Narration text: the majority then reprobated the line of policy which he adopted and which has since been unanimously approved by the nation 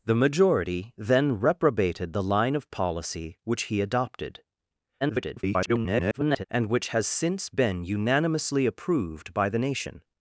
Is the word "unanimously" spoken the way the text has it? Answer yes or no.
yes